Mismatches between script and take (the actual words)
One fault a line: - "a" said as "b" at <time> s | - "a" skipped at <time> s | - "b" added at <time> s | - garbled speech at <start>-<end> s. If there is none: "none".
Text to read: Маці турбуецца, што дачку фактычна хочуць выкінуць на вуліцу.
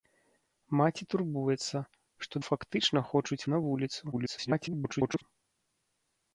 - "дачку" skipped at 2.4 s
- "выкінуць" skipped at 3.4 s
- garbled speech at 4.1-5.2 s